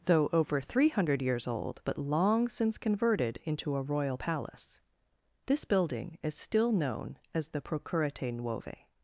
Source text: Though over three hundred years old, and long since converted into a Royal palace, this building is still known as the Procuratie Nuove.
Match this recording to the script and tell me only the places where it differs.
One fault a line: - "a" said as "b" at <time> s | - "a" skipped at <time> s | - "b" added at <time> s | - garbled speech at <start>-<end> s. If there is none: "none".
- "and" said as "but" at 1.8 s